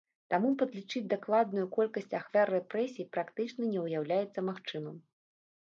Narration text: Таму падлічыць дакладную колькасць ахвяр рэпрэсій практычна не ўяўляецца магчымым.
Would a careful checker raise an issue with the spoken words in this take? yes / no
no